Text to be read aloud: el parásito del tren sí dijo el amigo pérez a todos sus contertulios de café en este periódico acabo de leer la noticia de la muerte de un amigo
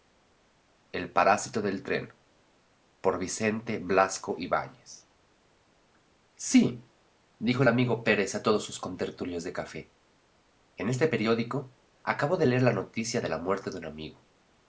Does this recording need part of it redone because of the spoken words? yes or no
no